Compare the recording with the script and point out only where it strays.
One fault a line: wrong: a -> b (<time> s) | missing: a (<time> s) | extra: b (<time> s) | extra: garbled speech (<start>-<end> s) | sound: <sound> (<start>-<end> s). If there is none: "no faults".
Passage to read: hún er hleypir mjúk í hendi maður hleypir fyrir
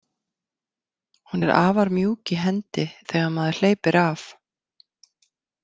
wrong: hleypir -> afar (1.6 s)
extra: þegar (3.1 s)
wrong: fyrir -> af (4.0 s)